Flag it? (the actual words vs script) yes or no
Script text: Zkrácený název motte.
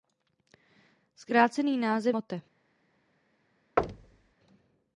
no